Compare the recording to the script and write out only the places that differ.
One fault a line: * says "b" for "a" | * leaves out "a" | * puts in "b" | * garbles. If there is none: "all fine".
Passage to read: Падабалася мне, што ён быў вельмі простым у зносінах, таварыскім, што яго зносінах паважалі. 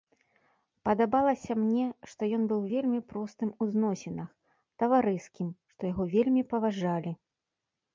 * says "вельмі" for "зносінах"